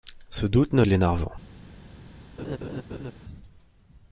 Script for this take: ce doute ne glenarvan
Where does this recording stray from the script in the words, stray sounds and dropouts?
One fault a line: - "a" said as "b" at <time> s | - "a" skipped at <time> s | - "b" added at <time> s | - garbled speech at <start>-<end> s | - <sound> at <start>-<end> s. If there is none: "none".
- laugh at 2.4-3.1 s